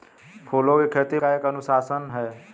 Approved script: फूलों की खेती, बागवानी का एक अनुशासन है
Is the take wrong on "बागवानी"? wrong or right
wrong